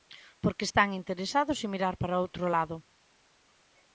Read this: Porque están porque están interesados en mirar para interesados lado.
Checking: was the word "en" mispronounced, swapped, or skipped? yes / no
no